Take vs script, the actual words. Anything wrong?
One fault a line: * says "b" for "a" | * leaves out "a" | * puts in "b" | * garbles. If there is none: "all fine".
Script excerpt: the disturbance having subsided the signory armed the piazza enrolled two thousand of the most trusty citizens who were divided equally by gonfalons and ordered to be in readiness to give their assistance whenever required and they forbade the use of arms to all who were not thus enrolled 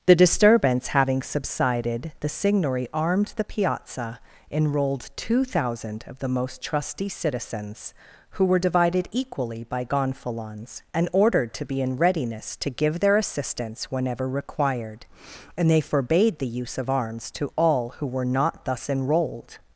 all fine